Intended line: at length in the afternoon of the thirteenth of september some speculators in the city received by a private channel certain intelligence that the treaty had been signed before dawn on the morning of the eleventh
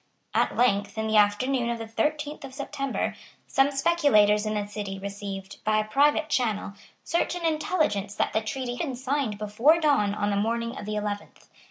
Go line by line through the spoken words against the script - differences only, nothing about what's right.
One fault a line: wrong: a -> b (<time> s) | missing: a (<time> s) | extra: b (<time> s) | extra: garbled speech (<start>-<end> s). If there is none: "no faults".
missing: had (8.8 s)